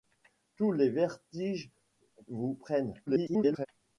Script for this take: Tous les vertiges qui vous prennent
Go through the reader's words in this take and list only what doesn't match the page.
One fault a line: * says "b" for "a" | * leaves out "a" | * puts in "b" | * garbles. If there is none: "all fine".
* leaves out "qui"
* garbles